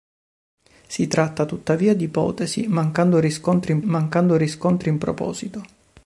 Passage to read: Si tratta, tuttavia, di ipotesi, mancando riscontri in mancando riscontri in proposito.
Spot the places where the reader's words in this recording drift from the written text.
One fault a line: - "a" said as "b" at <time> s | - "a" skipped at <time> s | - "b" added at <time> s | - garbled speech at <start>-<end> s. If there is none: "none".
none